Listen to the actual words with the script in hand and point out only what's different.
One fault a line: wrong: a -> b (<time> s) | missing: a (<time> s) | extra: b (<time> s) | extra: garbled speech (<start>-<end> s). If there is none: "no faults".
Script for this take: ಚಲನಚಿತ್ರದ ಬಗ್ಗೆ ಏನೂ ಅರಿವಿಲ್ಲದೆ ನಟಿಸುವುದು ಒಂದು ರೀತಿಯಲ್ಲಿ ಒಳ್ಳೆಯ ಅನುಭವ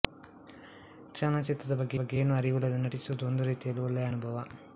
extra: ಬಗ್ಗೆ (2.0 s)